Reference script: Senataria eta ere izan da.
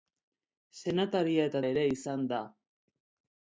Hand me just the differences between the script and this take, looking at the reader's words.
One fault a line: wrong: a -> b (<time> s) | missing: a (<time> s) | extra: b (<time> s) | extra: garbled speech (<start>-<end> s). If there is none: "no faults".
no faults